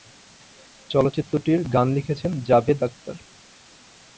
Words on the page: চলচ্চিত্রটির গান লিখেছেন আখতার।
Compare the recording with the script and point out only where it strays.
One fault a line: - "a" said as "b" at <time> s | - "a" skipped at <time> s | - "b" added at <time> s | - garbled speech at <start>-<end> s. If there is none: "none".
- "জাভেদ" added at 2.5 s